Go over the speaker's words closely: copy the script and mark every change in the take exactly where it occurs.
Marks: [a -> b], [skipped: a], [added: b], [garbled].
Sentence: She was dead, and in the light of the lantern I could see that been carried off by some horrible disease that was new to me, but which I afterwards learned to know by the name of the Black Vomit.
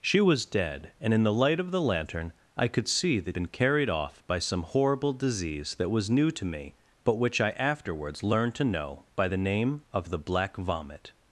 She was dead, and in the light of the lantern I could see that been carried off by some horrible disease that was new to me, but which I afterwards learned to know by the name of the Black Vomit.